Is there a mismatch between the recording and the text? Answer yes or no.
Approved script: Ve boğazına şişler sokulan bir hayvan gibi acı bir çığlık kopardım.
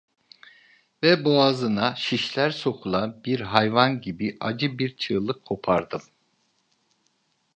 no